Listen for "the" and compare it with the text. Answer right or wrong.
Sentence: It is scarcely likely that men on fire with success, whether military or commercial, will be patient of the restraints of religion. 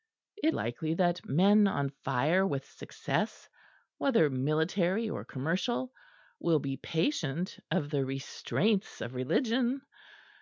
right